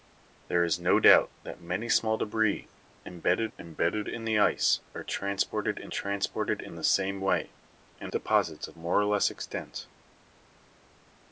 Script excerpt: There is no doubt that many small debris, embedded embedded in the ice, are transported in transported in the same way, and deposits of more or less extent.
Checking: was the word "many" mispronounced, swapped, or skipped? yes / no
no